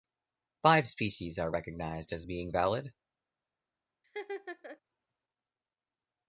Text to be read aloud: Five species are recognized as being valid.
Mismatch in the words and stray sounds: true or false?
true